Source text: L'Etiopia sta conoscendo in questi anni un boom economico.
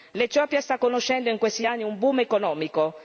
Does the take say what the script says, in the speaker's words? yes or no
yes